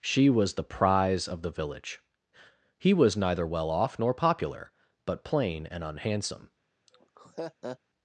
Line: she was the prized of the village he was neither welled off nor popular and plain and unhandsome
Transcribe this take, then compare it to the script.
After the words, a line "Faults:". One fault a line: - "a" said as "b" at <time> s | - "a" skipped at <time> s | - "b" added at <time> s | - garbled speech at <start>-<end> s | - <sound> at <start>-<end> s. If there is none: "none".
she was the prize of the village he was neither well off nor popular but plain and unhandsome
Faults:
- "prized" said as "prize" at 0.6 s
- "welled" said as "well" at 3.5 s
- "and" said as "but" at 5.0 s
- laugh at 6.9-7.8 s